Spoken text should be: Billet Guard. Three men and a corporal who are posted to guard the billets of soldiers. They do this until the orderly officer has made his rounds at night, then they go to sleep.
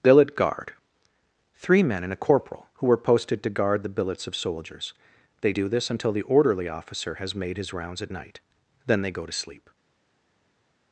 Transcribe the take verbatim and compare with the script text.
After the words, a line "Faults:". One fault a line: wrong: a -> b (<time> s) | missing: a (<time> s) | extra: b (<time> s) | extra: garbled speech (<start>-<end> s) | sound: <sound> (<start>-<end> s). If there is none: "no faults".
Billet Guard. Three men and a corporal who were posted to guard the billets of soldiers. They do this until the orderly officer has made his rounds at night, then they go to sleep.
Faults:
wrong: are -> were (2.9 s)